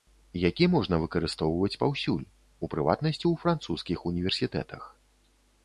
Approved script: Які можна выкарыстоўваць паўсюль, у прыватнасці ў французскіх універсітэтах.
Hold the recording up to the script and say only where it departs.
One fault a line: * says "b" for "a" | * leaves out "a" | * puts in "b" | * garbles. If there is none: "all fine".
all fine